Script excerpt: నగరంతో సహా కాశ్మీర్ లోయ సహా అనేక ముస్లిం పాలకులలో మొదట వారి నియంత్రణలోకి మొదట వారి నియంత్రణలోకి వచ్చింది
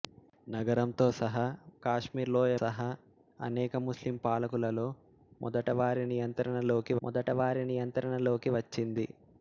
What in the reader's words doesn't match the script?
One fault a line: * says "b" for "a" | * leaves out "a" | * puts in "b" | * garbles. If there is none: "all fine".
all fine